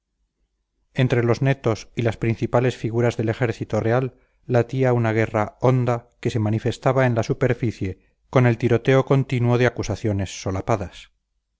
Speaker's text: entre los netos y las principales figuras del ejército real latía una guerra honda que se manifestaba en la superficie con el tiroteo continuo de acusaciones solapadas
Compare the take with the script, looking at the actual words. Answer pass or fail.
pass